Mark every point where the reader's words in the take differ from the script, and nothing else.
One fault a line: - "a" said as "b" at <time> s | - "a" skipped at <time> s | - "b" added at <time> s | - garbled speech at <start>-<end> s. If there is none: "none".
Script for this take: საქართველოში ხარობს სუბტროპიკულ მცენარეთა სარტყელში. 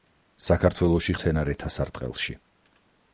- "ხარობს სუბტროპიკულ" skipped at 1.1 s